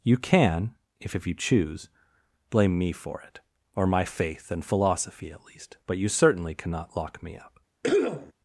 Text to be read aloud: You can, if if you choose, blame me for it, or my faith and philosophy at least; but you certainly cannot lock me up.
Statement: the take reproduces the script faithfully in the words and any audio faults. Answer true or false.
false